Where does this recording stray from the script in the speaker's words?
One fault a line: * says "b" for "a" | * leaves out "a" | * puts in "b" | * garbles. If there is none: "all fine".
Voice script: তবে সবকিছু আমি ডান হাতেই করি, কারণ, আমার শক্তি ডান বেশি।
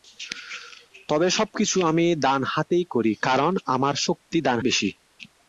all fine